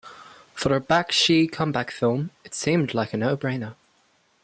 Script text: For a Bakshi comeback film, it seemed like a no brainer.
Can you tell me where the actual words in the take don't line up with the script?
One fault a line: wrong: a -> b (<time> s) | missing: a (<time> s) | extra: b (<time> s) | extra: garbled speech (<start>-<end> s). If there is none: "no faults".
no faults